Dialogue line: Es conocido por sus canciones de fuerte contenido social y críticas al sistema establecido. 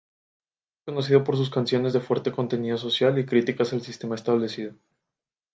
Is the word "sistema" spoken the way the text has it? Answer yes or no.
yes